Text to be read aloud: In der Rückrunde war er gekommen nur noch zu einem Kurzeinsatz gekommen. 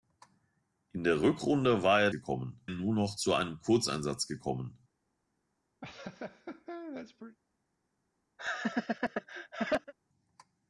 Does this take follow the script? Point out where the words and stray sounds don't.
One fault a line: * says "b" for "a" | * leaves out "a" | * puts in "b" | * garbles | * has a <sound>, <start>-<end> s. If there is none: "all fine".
* has a laugh, 5.8-7.4 s
* has a laugh, 8.4-9.9 s